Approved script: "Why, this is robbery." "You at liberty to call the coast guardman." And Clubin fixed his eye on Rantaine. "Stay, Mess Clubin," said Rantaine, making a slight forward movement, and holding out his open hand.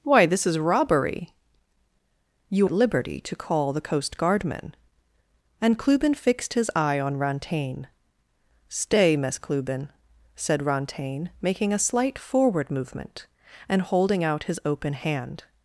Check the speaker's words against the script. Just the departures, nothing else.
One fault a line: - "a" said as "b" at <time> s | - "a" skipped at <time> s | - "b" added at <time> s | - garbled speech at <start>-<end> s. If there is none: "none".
none